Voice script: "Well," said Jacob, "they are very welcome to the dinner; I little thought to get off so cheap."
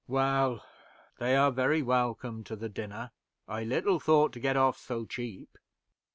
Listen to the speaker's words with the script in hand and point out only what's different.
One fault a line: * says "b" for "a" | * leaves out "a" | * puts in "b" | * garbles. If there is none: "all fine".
* leaves out "said Jacob"